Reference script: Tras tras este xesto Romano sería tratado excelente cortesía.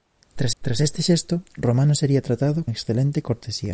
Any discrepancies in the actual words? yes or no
no